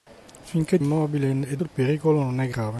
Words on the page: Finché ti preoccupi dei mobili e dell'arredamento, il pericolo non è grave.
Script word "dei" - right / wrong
wrong